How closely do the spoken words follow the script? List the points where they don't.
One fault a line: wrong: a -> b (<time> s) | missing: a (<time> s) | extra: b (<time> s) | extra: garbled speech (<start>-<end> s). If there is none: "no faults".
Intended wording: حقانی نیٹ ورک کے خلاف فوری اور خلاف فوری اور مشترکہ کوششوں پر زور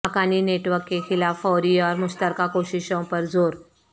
missing: خلاف فوری اور (1.9 s)